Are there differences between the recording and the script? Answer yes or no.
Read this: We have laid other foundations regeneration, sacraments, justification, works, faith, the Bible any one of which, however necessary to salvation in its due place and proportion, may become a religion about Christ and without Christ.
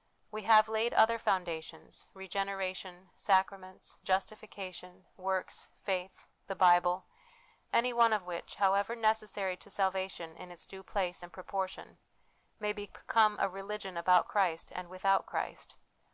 no